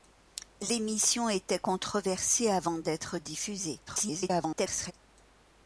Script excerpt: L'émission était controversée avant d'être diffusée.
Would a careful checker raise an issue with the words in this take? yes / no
yes